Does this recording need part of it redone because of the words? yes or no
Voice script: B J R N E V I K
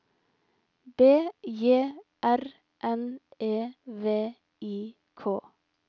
no